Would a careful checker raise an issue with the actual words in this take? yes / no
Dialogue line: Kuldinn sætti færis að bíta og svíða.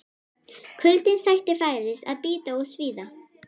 no